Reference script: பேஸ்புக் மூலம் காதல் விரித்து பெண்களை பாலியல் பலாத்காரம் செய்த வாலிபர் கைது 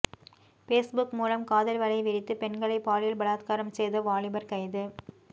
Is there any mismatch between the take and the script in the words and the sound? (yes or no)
yes